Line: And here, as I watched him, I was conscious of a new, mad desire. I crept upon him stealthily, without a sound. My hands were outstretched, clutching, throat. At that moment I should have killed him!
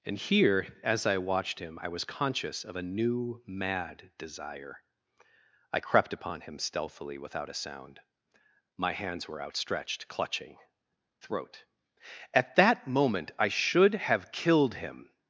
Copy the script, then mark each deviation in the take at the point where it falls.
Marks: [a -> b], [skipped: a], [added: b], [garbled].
And here, as I watched him, I was conscious of a new, mad desire. I crept upon him stealthily, without a sound. My hands were outstretched, clutching, throat. At that moment I should have killed him!